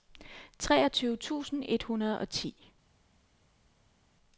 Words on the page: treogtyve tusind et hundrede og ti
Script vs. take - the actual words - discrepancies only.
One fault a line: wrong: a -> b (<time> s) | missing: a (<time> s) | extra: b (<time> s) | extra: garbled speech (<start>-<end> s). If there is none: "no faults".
no faults